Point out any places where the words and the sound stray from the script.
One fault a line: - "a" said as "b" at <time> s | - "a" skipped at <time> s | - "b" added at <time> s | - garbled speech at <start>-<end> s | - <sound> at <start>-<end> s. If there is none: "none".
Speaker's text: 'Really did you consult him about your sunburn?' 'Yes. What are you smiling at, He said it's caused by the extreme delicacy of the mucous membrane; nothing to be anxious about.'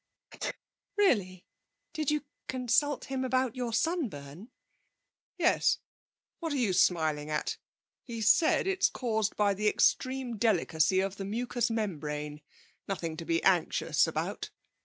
- sneeze at 0.3-0.6 s